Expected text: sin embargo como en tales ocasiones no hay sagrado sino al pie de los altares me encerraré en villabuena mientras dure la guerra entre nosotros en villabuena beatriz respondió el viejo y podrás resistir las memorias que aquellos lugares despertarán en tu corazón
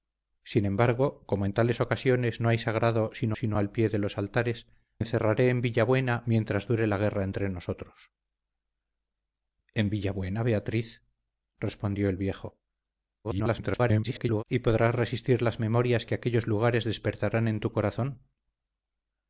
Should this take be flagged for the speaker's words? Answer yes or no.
yes